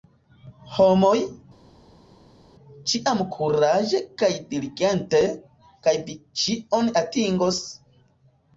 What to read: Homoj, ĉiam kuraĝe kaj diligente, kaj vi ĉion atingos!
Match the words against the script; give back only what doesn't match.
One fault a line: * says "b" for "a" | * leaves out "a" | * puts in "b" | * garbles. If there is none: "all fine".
all fine